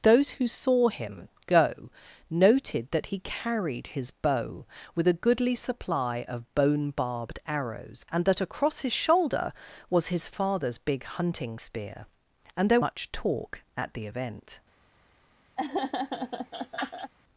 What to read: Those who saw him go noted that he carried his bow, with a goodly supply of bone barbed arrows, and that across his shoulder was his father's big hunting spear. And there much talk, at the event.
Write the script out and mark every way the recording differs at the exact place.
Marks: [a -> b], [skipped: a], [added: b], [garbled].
Those who saw him go noted that he carried his bow, with a goodly supply of bone barbed arrows, and that across his shoulder was his father's big hunting spear. And there much talk, at the event.